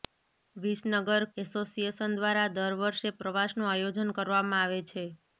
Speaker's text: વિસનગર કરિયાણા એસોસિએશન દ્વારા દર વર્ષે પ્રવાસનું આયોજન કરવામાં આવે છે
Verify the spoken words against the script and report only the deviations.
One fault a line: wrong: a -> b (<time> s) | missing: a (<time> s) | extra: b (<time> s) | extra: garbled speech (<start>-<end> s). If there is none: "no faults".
missing: કરિયાણા (1.2 s)